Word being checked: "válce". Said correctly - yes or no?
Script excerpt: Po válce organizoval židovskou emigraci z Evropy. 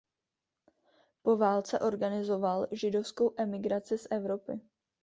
yes